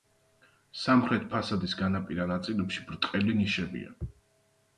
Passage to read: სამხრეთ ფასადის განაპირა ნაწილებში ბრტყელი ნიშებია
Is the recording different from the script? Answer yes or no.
no